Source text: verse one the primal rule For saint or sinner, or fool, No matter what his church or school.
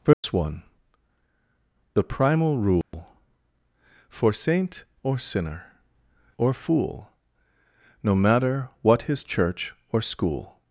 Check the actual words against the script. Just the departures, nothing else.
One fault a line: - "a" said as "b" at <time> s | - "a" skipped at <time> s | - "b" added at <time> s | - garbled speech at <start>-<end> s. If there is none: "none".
none